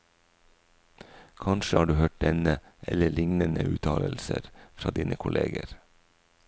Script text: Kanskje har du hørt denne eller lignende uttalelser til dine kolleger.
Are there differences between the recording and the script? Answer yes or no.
yes